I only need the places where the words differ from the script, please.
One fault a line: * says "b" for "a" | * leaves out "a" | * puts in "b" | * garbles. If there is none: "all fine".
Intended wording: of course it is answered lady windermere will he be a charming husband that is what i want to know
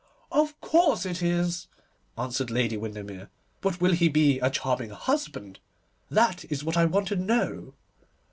* puts in "but"